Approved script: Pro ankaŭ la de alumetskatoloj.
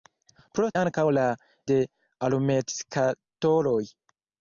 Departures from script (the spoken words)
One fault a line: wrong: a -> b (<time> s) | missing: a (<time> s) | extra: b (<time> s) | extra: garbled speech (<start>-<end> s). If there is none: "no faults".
no faults